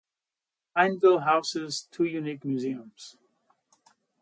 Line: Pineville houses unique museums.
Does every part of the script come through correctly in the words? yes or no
no